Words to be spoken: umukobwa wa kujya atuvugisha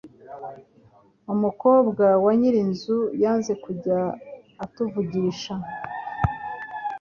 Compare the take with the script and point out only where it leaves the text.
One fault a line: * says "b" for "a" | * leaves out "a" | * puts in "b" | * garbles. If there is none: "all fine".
* puts in "nyirinzu yanze"